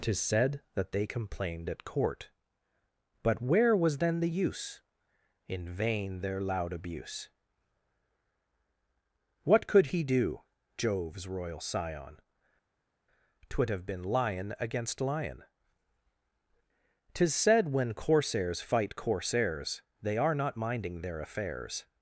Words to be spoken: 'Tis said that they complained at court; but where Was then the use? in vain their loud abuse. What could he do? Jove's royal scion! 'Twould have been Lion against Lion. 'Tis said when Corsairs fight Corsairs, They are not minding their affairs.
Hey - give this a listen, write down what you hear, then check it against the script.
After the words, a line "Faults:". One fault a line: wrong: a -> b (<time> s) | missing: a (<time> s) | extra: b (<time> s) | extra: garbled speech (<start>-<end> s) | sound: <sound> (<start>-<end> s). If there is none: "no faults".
'Tis said that they complained at court; but where Was then the use? in vain their loud abuse. What could he do? Jove's royal scion! 'Twould have been Lion against Lion. 'Tis said when Corsairs fight Corsairs, They are not minding their affairs.
Faults:
no faults